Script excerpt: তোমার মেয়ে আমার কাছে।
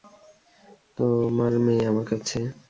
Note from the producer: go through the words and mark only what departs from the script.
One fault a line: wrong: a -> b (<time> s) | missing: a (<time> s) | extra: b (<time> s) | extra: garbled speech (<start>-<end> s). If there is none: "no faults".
no faults